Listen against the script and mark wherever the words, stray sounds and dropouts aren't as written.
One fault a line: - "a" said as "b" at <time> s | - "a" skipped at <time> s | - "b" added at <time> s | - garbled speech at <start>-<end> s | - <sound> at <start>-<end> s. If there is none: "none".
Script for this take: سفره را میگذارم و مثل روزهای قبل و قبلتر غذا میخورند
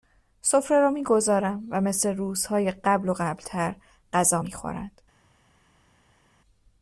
none